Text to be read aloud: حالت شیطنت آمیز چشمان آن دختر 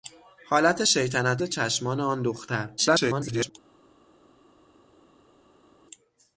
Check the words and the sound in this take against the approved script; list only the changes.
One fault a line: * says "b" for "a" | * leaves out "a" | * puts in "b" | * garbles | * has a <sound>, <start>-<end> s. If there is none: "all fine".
* leaves out "آمیز"
* garbles